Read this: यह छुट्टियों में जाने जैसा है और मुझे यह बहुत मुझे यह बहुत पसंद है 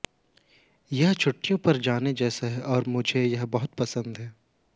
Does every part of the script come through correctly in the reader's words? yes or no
no